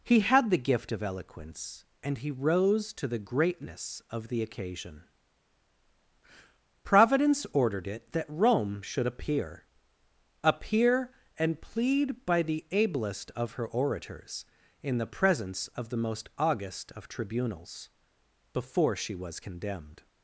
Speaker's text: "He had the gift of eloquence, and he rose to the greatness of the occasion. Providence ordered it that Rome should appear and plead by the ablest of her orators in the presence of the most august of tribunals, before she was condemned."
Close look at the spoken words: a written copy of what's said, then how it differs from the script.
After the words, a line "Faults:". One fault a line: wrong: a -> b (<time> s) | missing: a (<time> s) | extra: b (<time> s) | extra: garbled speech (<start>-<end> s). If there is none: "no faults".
"He had the gift of eloquence, and he rose to the greatness of the occasion. Providence ordered it that Rome should appear appear and plead by the ablest of her orators in the presence of the most august of tribunals, before she was condemned."
Faults:
extra: appear (10.4 s)